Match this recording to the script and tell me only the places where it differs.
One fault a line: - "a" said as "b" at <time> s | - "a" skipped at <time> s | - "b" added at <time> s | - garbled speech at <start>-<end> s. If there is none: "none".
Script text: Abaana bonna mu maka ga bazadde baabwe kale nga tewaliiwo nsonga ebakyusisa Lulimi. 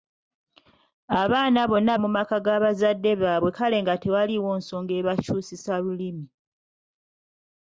none